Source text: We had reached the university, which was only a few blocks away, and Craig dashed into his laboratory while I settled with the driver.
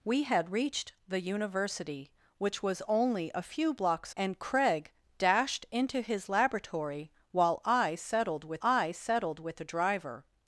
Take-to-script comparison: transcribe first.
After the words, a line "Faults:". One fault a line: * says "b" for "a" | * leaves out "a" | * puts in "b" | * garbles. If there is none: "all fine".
We had reached the university, which was only a few blocks and Craig dashed into his laboratory while I settled with I settled with the driver.
Faults:
* leaves out "away"
* puts in "I settled with"